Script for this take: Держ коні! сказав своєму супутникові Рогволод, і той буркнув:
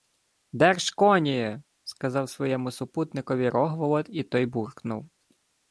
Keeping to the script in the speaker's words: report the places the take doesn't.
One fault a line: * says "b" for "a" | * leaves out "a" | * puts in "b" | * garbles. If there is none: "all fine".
all fine